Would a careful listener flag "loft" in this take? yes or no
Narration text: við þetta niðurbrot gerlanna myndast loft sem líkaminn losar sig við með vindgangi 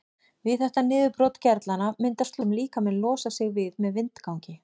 yes